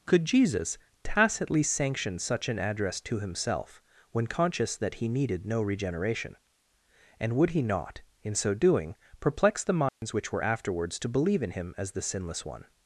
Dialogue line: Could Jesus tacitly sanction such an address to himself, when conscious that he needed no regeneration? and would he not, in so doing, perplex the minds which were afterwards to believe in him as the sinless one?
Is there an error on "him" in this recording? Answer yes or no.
no